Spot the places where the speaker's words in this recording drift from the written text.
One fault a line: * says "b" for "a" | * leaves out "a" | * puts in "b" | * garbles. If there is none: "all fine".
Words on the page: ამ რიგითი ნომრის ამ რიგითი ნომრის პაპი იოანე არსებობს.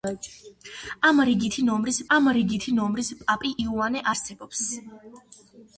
all fine